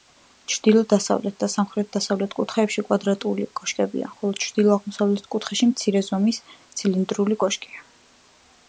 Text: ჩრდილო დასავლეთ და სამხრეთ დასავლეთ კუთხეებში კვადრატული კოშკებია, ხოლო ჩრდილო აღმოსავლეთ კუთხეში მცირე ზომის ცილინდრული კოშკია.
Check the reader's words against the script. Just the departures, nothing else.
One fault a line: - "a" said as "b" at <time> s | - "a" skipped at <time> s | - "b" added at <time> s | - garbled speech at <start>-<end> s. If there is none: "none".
none